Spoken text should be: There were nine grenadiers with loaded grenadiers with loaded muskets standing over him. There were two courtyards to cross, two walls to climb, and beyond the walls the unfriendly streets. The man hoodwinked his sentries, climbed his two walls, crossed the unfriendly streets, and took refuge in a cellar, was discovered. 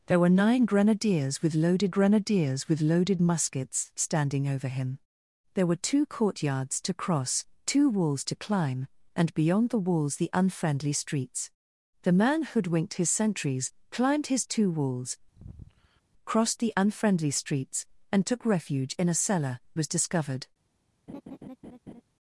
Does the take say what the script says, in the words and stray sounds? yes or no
no